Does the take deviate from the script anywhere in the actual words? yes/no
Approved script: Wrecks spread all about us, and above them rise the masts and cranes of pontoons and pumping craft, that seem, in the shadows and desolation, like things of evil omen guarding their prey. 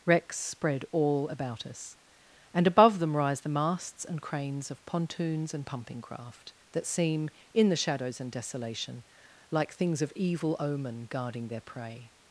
no